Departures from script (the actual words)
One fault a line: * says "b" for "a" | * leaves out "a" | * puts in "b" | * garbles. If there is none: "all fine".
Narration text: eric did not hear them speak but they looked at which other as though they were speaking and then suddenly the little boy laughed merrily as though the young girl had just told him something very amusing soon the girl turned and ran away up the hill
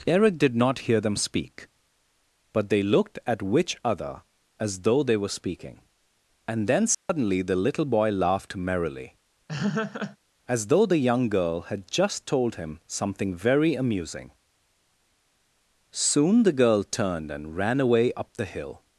all fine